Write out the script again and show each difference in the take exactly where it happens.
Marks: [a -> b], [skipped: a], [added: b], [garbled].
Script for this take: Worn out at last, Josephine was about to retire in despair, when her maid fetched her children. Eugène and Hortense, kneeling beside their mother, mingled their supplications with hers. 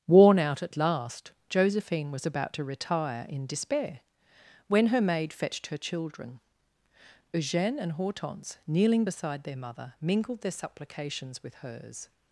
Worn out at last, Josephine was about to retire in despair, when her maid fetched her children. Eugène and Hortense, kneeling beside their mother, mingled their supplications with hers.